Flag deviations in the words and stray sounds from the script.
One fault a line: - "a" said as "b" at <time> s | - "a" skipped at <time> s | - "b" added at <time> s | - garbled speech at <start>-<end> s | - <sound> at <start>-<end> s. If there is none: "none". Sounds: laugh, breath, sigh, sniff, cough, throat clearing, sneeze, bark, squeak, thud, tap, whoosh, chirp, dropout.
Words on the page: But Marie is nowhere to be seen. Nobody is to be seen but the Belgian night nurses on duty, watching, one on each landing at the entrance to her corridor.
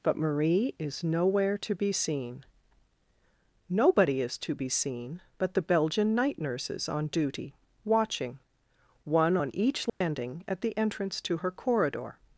- dropout at 9.9-10.0 s